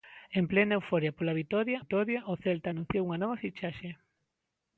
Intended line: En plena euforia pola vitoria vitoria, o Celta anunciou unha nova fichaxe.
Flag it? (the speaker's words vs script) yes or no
no